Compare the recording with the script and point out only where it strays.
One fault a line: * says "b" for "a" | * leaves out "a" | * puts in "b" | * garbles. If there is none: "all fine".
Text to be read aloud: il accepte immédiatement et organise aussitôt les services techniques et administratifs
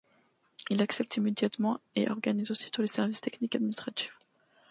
all fine